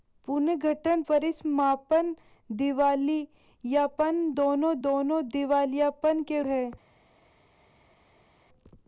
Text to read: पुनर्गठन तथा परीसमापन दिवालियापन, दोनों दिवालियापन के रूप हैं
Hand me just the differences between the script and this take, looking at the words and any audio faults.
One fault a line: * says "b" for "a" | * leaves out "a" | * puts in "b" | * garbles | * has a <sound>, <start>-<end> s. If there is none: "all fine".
* leaves out "तथा"
* puts in "दोनों"
* leaves out "रूप"